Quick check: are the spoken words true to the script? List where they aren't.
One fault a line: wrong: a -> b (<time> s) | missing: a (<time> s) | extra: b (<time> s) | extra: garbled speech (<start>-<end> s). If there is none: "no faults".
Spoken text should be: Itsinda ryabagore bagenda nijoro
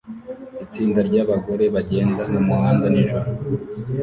extra: mumuhanda (2.3 s)